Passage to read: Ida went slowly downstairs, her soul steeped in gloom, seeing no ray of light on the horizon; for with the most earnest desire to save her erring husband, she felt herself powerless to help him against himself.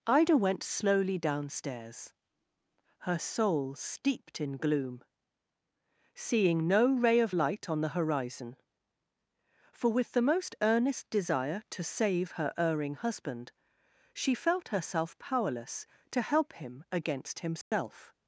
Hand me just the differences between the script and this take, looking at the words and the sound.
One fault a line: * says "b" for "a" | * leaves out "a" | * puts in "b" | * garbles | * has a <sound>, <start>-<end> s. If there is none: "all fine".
* has a dropout, 17.6-17.7 s